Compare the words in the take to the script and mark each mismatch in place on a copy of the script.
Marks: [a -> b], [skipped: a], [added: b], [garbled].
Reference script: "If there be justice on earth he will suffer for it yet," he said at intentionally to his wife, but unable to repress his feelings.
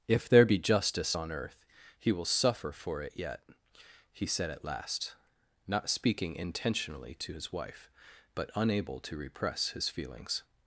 "If there be justice on earth he will suffer for it yet," he said at [added: last not speaking] intentionally to his wife, but unable to repress his feelings.